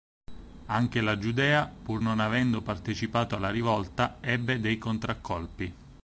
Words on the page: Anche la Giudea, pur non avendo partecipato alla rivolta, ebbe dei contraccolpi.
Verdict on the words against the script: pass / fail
pass